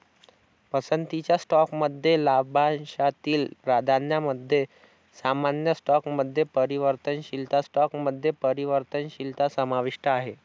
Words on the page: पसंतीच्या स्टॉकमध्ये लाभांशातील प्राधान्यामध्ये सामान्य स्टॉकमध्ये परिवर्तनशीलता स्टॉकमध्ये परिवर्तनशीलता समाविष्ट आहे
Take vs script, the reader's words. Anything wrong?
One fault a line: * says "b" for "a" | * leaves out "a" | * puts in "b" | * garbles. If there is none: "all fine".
all fine